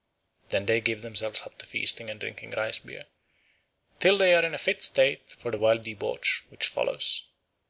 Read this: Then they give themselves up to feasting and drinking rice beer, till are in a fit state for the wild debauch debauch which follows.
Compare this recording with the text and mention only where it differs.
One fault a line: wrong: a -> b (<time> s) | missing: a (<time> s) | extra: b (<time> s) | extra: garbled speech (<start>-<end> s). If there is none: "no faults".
extra: they (4.2 s)
missing: debauch (6.4 s)